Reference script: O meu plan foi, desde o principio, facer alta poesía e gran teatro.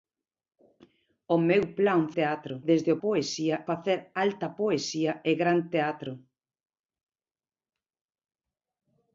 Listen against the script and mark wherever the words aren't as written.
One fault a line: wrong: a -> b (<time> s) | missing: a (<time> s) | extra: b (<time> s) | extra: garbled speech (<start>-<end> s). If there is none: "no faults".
wrong: foi -> teatro (2.2 s)
wrong: principio -> poesía (3.0 s)